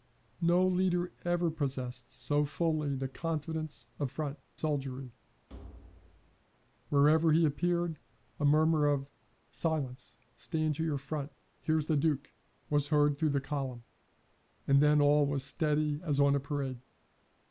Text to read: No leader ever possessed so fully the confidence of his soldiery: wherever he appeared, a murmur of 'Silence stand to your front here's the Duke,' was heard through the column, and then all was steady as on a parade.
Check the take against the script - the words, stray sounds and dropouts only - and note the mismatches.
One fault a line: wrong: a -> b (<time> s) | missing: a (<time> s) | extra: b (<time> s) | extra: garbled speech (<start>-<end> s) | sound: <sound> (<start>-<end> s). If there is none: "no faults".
wrong: his -> front (4.0 s)
sound: thud (5.5-6.4 s)